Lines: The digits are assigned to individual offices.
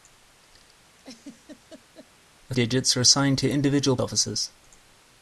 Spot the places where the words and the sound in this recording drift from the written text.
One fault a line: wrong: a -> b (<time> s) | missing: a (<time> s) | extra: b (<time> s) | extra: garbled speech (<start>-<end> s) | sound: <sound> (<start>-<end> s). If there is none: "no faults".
sound: laugh (1.0-2.1 s)